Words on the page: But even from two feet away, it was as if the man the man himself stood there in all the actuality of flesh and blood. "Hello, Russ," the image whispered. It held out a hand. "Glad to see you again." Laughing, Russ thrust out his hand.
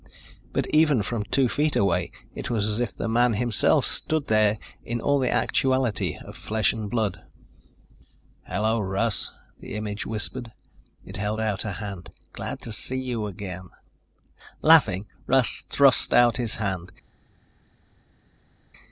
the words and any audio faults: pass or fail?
fail